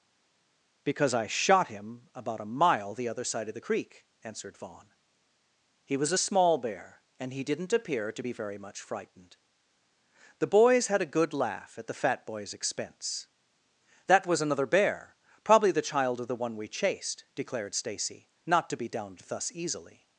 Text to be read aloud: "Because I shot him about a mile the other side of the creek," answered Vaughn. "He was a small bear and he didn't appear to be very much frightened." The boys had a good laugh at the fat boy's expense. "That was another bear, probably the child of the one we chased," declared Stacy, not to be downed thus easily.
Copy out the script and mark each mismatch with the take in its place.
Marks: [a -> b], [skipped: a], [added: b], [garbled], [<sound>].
"Because I shot him about a mile the other side of the creek," answered Vaughn. "He was a small bear and he didn't appear to be very much frightened." The boys had a good laugh at the fat boy's expense. "That was another bear, probably the child of the one we chased," declared Stacy, not to be downed thus easily.